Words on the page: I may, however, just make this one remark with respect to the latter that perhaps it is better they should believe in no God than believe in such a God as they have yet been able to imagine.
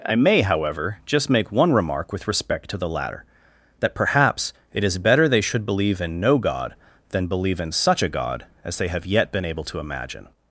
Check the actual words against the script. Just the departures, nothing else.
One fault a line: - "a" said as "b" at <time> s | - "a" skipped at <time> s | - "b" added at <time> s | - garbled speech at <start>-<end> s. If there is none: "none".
- "this" skipped at 1.5 s